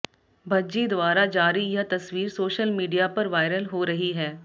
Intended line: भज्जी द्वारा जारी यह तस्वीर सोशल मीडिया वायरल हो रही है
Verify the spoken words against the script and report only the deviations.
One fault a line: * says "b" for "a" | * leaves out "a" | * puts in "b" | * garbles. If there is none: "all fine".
* puts in "पर"